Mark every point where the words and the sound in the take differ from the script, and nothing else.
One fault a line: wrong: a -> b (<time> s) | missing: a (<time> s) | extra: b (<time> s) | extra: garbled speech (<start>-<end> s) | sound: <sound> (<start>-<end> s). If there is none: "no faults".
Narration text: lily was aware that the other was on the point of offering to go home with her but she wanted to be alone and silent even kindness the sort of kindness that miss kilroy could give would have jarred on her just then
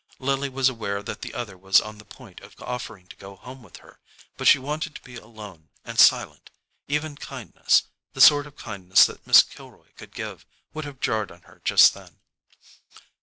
no faults